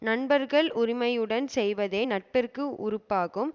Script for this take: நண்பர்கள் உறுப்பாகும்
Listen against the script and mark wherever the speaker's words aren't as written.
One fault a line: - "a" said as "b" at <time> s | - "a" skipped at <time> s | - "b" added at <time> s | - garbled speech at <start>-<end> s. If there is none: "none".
- "உரிமையுடன் செய்வதே நட்பிற்கு" added at 0.7 s